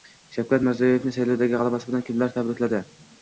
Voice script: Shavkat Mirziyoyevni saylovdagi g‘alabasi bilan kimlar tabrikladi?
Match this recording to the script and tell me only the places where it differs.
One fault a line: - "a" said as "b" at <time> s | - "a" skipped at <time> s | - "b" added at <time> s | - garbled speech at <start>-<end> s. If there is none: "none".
none